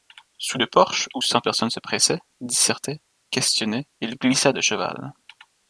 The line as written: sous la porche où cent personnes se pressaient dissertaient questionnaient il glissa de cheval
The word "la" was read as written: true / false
false